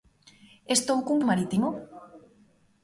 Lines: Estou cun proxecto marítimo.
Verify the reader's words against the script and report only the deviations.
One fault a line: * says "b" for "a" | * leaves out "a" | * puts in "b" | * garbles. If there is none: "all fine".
* leaves out "proxecto"